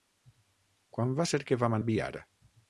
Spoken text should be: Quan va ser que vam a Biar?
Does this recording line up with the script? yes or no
yes